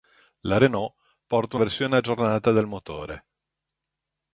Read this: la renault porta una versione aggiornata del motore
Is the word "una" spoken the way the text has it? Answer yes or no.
no